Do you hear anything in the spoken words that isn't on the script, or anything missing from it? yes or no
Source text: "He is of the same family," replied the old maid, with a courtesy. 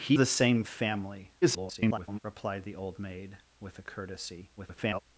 yes